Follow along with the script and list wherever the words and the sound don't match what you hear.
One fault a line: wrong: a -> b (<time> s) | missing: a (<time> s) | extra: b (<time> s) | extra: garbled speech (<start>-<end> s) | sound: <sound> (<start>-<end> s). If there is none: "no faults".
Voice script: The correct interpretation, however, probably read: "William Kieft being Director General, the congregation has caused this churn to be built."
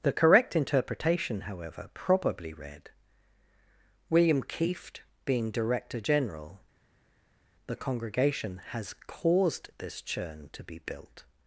no faults